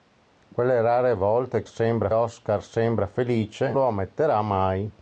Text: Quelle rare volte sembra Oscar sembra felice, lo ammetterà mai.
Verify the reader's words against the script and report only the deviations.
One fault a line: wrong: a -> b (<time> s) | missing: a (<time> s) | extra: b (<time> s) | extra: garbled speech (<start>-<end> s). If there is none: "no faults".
no faults